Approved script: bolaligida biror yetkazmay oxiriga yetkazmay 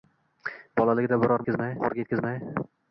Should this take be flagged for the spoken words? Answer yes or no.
no